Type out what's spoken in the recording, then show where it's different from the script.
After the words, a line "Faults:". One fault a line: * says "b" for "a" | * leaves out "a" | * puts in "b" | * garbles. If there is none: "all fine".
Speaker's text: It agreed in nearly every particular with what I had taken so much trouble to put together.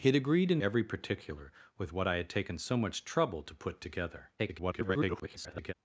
It agreed in every particular with what I had taken so much trouble to put together. [garbled]
Faults:
* leaves out "nearly"
* garbles